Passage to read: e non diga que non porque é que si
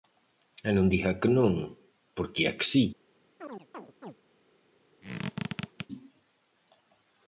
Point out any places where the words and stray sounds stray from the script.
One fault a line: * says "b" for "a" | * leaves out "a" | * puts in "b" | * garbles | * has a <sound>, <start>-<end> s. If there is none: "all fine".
* has a chirp, 3.4-4.1 s
* has a squeak, 5.0-5.9 s